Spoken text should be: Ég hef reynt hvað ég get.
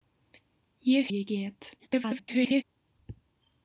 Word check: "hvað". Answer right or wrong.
wrong